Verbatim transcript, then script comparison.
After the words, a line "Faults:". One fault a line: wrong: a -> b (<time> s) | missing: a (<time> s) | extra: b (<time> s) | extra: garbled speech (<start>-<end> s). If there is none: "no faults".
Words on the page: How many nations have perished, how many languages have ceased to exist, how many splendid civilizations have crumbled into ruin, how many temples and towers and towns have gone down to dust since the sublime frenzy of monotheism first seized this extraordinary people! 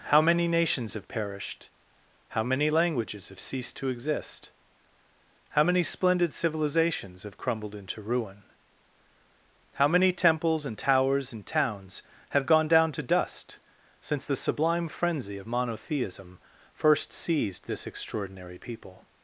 How many nations have perished, how many languages have ceased to exist, how many splendid civilizations have crumbled into ruin, how many temples and towers and towns have gone down to dust since the sublime frenzy of monotheism first seized this extraordinary people!
Faults:
no faults